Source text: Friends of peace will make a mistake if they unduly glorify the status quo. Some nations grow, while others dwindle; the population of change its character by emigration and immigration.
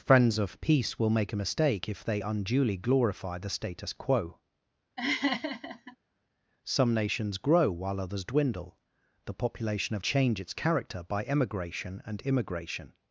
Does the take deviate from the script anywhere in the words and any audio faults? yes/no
yes